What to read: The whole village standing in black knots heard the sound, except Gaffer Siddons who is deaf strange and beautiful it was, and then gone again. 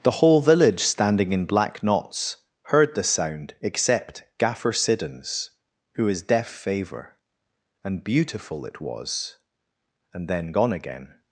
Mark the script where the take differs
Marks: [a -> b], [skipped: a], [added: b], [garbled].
The whole village standing in black knots heard the sound, except Gaffer Siddons who is deaf [strange -> favour] and beautiful it was, and then gone again.